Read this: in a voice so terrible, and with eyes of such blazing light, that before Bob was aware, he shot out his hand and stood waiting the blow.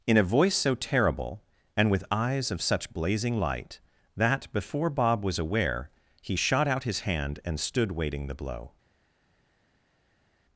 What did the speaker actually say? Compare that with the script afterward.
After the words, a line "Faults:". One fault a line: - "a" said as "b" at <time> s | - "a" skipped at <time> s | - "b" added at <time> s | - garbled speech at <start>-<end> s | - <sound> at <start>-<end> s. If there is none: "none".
in a voice so terrible, and with eyes of such blazing light, that before Bob was aware, he shot out his hand and stood waiting the blow.
Faults:
none